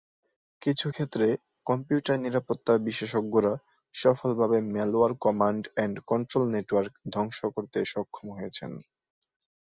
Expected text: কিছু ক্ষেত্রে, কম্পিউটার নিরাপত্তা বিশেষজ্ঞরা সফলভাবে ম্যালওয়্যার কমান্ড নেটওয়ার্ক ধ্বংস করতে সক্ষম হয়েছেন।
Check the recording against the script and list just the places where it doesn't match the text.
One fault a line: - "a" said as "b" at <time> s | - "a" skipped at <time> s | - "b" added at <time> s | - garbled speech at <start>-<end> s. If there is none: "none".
- "এন্ড কন্ট্রোল" added at 5.8 s